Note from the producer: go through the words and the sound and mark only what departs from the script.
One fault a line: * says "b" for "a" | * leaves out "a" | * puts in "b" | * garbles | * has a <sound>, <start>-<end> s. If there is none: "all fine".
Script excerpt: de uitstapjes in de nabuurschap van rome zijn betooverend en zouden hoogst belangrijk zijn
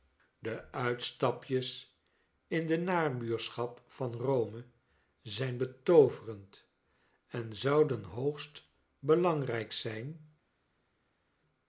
all fine